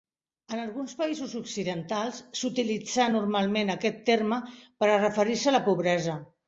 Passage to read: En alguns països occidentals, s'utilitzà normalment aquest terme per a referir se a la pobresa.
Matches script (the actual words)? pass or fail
pass